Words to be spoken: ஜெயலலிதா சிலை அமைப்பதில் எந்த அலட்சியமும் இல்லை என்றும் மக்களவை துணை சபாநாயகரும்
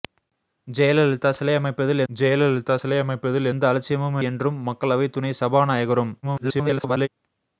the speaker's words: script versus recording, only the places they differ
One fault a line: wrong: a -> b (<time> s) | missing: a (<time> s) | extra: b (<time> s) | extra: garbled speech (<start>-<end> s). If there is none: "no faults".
extra: ஜெயலலிதா சிலை அமைப்பதில் (2.1 s)
missing: இல்லை (4.2 s)
extra: garbled speech (6.2-7.1 s)